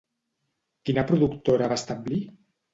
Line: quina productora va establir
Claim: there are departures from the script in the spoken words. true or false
false